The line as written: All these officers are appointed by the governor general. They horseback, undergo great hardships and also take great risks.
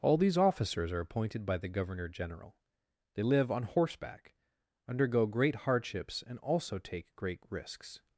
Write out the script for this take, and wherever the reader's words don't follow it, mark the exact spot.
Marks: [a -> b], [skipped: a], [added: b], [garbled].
All these officers are appointed by the governor general. They [added: live on] horseback, undergo great hardships and also take great risks.